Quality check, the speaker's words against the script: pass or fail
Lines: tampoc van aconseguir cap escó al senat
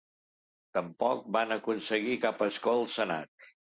pass